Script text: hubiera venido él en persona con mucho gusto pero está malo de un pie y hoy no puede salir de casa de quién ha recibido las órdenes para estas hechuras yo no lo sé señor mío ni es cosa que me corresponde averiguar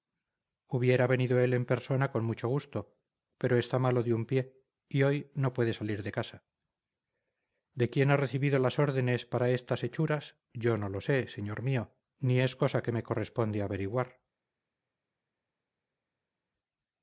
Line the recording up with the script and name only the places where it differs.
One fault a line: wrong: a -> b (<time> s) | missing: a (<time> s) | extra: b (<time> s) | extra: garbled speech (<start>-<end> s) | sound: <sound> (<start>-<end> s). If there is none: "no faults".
no faults